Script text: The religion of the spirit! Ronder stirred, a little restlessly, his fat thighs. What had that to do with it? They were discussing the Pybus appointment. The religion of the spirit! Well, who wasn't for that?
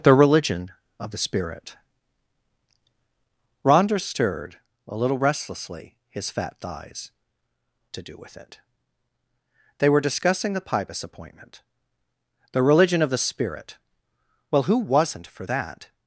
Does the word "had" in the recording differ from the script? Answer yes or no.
yes